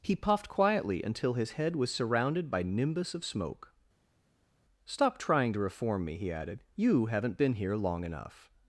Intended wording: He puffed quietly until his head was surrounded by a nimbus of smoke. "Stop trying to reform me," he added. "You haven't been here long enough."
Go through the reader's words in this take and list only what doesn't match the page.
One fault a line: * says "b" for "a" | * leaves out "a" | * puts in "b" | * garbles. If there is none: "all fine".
* leaves out "a"